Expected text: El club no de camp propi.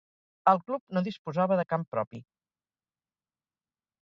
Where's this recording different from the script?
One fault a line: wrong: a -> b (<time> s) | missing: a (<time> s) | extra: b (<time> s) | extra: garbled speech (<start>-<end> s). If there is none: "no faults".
extra: disposava (1.1 s)